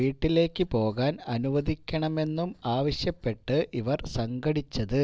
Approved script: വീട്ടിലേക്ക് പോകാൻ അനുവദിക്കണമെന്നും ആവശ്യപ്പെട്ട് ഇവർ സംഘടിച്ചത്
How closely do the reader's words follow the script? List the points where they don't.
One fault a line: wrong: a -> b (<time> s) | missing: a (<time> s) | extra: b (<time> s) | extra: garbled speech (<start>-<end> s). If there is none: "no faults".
no faults